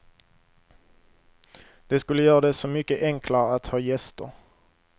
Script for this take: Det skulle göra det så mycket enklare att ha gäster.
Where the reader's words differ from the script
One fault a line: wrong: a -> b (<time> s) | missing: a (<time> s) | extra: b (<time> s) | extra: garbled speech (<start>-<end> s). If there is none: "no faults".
no faults